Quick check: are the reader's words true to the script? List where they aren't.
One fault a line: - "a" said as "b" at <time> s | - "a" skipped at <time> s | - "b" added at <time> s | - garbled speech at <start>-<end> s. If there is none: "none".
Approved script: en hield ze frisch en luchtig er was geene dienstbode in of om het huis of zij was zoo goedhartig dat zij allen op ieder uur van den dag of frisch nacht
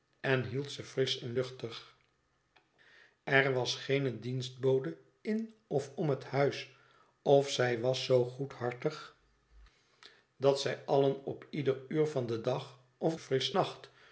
none